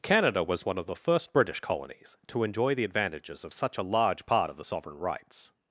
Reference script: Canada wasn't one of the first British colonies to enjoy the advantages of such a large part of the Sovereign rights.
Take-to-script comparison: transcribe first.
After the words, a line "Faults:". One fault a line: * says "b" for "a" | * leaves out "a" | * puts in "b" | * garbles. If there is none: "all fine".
Canada was one of the first British colonies to enjoy the advantages of such a large part of the Sovereign rights.
Faults:
* says "was" for "wasn't"